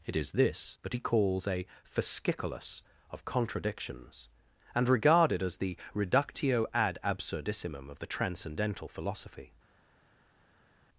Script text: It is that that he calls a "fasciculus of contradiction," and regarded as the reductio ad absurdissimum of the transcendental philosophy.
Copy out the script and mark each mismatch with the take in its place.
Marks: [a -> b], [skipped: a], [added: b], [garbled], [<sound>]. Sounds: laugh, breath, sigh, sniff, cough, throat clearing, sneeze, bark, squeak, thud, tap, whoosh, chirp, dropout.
It is [that -> this] that he calls a "fasciculus of [contradiction," -> contradictions] and regarded as the reductio ad absurdissimum of the transcendental philosophy.